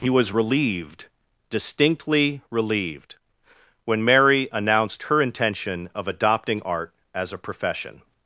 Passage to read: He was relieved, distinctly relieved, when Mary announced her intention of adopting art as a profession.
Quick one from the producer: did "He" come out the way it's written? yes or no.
yes